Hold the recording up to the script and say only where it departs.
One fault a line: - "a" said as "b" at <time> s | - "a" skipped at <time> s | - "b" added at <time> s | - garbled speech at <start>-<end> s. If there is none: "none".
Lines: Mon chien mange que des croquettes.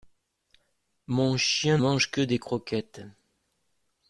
none